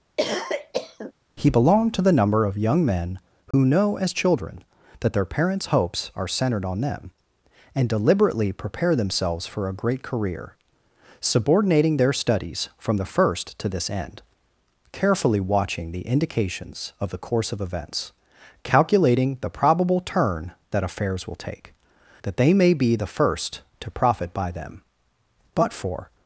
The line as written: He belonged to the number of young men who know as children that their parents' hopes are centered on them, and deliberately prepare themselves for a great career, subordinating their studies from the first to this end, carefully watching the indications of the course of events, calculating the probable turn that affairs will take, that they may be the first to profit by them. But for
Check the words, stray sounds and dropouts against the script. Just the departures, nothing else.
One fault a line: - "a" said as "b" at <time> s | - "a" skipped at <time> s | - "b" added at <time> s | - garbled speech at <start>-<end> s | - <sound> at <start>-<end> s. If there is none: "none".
- cough at 0.2-1.1 s
- dropout at 3.5-3.5 s